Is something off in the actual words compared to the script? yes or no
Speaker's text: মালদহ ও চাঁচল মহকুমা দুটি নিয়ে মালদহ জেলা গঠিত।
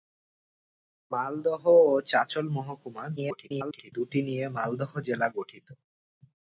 yes